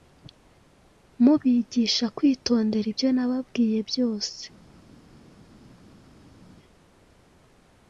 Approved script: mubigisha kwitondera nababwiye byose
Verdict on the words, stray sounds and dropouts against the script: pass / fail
fail